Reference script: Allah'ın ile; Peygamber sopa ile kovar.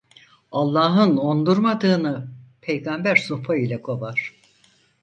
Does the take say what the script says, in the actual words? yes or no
no